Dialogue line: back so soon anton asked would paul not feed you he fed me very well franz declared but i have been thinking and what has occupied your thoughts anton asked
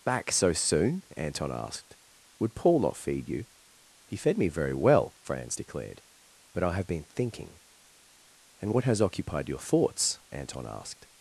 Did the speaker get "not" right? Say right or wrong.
right